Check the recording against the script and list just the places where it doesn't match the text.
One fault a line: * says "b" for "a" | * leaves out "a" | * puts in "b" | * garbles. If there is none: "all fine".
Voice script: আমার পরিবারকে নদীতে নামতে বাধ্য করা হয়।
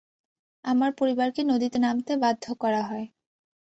all fine